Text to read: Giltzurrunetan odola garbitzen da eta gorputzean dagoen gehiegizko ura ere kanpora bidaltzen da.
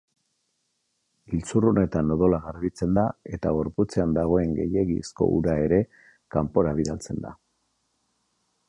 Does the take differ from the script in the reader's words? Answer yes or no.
no